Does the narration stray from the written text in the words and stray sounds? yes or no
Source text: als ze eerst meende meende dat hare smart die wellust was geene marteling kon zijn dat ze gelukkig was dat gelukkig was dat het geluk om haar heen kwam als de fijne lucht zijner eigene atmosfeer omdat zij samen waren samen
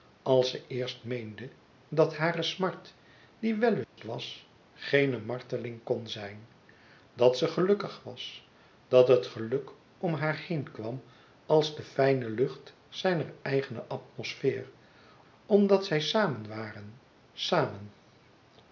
yes